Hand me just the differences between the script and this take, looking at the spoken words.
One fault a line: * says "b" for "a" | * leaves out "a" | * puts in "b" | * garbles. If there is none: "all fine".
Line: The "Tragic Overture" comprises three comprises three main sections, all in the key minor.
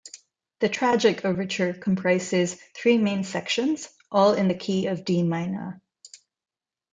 * leaves out "comprises three"
* puts in "of D"